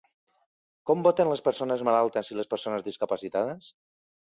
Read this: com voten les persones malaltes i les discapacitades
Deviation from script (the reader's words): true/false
true